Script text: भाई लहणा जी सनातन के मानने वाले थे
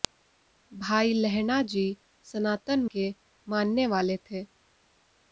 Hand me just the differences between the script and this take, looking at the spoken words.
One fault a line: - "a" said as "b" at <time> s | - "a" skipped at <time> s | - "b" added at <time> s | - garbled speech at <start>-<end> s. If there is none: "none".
none